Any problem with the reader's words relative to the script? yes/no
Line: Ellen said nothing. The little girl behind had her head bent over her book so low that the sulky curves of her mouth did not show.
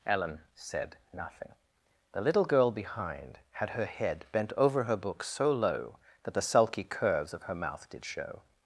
yes